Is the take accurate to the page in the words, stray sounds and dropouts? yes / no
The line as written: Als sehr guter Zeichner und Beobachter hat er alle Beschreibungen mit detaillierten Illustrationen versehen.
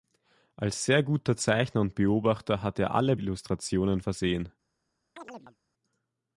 no